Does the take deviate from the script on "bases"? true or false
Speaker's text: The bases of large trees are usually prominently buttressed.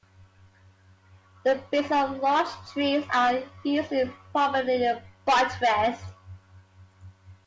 false